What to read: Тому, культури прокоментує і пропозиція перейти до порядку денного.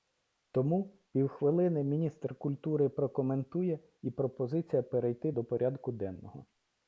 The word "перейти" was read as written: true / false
true